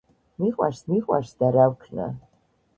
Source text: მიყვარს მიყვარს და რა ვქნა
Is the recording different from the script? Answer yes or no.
no